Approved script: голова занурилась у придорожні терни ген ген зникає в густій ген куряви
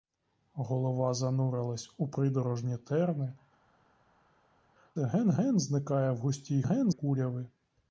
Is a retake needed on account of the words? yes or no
no